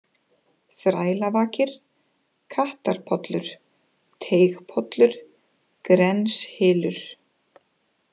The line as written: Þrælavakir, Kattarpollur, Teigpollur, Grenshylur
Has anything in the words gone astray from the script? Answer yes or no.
no